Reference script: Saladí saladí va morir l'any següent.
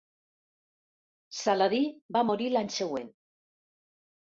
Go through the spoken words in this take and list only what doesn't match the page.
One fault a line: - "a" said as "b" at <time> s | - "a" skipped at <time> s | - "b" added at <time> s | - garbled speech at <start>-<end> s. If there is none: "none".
- "saladí" skipped at 1.8 s